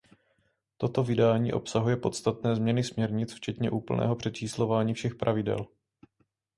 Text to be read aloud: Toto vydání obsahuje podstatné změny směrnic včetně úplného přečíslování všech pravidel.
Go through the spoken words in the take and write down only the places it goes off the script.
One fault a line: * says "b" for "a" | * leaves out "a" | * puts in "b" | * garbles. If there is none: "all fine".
all fine